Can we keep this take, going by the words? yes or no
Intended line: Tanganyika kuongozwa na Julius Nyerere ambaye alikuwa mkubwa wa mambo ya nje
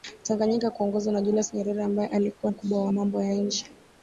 yes